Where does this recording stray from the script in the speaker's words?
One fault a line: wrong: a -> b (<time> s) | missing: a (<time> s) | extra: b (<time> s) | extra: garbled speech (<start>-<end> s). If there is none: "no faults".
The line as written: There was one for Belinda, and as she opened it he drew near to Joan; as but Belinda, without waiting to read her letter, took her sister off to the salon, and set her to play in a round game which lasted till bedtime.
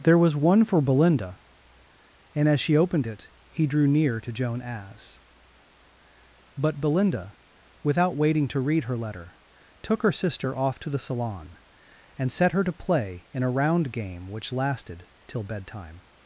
no faults